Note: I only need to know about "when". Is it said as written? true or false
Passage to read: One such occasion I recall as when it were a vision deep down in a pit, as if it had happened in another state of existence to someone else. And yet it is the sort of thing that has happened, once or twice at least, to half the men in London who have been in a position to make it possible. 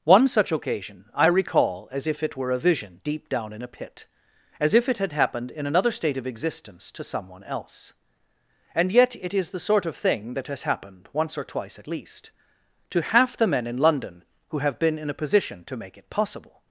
false